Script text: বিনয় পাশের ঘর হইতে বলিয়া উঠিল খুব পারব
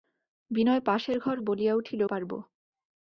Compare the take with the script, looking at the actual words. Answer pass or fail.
fail